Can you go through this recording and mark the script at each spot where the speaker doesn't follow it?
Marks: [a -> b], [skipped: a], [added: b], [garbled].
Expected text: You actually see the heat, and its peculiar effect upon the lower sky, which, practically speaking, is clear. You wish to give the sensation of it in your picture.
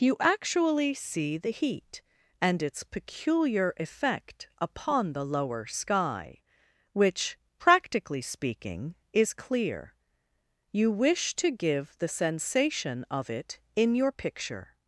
You actually see the heat, and its peculiar effect upon the lower sky, which, practically speaking, is clear. You wish to give the sensation of it in your picture.